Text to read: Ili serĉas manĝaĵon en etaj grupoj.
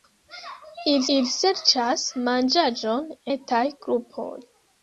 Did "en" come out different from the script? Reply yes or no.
yes